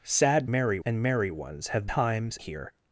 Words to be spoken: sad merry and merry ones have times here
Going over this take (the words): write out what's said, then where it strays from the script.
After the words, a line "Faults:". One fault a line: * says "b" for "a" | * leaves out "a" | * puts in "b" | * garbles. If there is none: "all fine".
sad merry and merry ones have times here
Faults:
all fine